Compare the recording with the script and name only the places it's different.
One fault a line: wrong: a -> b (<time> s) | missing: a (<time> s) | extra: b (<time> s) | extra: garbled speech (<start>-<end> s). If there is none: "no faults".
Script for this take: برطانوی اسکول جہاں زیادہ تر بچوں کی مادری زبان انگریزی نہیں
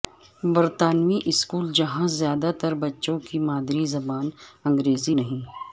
no faults